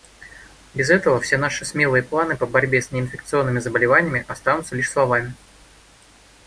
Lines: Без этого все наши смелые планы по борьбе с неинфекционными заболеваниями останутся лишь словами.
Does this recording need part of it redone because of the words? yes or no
no